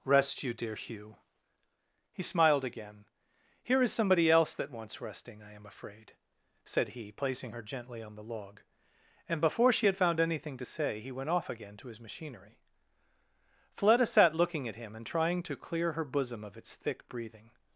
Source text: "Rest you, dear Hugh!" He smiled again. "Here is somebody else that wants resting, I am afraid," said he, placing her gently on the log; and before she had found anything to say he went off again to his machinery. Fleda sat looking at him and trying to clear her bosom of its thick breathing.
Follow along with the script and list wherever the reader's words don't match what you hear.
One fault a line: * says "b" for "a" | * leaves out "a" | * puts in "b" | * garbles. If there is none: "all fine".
all fine